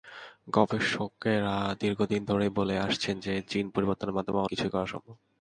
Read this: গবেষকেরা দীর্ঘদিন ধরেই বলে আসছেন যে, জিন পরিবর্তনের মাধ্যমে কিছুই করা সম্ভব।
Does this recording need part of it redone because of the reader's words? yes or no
no